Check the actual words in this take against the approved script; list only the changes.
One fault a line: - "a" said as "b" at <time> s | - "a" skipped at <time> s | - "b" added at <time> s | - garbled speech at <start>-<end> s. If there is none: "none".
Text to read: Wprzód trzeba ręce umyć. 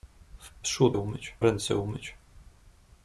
- "trzeba" said as "umyć" at 1.0 s